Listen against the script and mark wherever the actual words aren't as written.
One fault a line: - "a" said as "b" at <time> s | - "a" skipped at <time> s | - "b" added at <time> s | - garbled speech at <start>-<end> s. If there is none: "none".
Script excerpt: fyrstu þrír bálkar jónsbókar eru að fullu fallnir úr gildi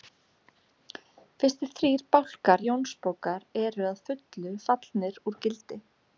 none